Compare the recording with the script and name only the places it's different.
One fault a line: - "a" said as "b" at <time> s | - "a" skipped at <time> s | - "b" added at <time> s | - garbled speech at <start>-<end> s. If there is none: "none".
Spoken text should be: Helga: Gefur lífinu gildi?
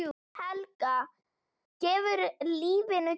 none